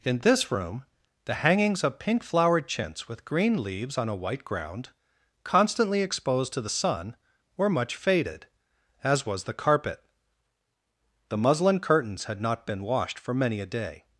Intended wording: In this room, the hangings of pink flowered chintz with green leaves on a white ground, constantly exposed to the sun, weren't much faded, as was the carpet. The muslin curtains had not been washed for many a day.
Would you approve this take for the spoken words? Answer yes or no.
no